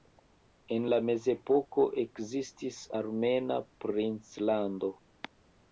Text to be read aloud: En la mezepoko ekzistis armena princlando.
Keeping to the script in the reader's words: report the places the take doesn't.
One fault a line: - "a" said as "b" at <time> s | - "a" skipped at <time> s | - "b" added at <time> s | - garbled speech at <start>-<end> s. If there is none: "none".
none